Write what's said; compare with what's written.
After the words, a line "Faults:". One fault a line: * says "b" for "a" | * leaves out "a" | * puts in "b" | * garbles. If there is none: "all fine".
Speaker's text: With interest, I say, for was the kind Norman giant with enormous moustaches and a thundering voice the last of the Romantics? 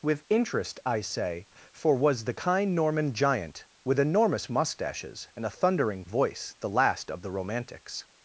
With interest, I say, for was the kind Norman giant with enormous moustaches and a thundering voice the last of the Romantics?
Faults:
all fine